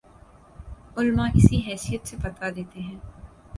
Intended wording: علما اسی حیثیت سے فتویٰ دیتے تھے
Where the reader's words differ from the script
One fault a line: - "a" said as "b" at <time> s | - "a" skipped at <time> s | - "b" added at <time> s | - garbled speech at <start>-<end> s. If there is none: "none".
- "تھے" said as "ہیں" at 2.8 s